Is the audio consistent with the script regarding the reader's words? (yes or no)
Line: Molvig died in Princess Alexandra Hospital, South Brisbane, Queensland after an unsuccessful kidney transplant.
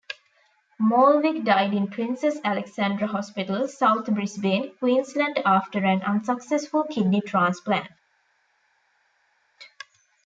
yes